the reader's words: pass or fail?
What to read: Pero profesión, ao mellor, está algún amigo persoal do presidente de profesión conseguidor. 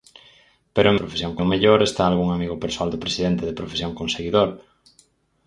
pass